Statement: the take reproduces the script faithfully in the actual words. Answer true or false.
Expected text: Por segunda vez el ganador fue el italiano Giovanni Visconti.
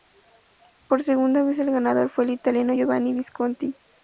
true